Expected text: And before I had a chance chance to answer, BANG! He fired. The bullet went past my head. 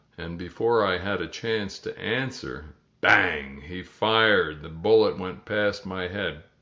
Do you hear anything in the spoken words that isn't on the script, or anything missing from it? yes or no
yes